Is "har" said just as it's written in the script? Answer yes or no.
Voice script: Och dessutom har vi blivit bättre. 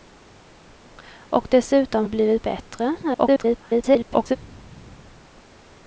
no